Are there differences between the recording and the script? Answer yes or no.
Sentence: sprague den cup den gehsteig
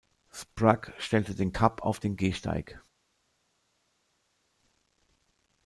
yes